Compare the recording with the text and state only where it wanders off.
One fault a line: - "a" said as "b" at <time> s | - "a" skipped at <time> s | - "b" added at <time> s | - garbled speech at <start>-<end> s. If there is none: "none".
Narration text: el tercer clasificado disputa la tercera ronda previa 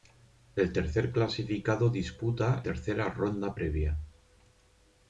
- "la" skipped at 2.6 s